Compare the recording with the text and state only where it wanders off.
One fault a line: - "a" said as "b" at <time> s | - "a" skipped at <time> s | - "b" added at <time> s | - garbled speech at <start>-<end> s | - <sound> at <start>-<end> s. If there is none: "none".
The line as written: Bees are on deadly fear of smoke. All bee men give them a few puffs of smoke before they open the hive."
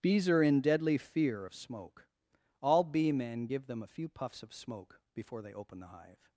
- "on" said as "in" at 0.4 s